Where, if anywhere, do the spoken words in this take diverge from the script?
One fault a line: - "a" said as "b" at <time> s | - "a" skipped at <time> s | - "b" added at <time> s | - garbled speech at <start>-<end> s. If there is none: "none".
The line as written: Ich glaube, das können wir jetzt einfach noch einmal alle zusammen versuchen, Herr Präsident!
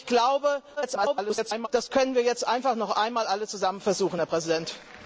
- garbled speech at 0.8-1.7 s